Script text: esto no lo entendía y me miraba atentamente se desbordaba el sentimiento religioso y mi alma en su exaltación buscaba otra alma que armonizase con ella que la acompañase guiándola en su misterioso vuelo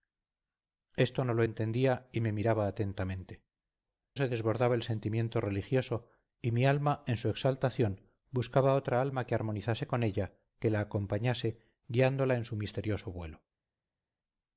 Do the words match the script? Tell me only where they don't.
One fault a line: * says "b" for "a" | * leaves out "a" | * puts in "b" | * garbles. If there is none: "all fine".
all fine